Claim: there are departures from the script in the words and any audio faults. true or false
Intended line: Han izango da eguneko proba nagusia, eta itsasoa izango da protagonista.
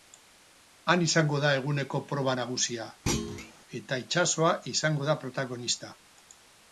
true